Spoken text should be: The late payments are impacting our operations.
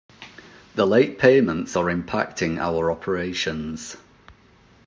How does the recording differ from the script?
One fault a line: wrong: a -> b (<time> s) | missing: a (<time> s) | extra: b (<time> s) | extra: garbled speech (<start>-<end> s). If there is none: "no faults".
no faults